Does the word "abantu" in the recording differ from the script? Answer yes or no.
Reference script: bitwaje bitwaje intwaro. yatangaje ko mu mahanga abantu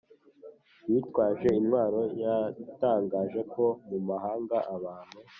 no